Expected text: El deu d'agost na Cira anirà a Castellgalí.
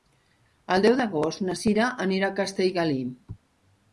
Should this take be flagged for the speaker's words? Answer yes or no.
no